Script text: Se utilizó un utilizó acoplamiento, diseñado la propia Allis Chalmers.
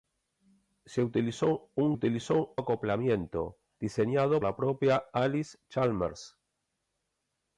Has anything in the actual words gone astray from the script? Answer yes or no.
no